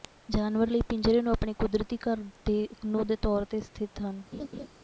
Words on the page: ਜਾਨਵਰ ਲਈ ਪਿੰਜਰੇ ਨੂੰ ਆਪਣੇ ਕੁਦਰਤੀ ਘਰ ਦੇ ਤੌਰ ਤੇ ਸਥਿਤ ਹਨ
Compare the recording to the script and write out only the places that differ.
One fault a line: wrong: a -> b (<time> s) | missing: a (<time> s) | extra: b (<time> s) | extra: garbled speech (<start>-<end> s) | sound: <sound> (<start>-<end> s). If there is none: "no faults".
extra: ਨੂੰ (2.8 s)
sound: laugh (4.3-4.7 s)